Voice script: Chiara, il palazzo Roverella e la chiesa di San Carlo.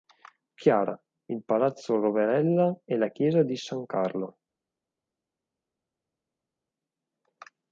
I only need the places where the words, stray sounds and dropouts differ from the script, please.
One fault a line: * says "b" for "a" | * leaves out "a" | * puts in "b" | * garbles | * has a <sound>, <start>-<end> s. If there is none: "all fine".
all fine